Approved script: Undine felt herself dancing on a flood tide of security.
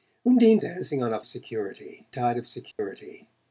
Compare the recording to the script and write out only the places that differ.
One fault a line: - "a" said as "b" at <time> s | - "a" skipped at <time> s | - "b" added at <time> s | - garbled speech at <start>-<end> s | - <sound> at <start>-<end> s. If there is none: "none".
- "felt herself" skipped at 0.6 s
- "flood" said as "security" at 1.3 s
- dropout at 2.7-2.8 s